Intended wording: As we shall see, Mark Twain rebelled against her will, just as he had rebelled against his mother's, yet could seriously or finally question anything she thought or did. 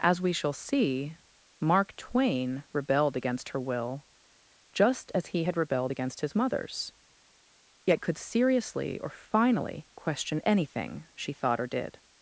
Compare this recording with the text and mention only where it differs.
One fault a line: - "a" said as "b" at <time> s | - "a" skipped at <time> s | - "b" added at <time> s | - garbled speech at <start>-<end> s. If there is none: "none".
none